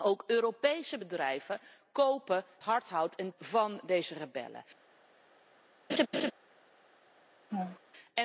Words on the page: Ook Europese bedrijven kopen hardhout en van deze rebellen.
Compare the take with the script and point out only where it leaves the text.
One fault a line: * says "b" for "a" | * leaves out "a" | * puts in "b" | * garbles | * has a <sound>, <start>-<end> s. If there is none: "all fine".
* has a laugh, 5.9-6.3 s
* has a laugh, 7.5-7.8 s